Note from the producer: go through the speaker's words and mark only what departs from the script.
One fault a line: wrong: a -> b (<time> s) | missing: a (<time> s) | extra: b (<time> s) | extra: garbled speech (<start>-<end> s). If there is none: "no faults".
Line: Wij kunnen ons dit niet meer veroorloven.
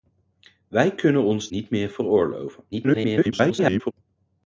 missing: dit (1.5 s)
extra: garbled speech (2.7-3.9 s)